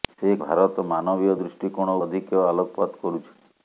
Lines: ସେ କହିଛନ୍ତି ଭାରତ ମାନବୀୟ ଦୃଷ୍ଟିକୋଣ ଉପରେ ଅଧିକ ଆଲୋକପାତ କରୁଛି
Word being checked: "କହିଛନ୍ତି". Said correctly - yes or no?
no